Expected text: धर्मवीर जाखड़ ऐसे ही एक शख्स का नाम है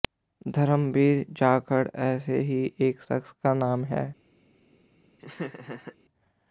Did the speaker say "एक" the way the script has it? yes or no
yes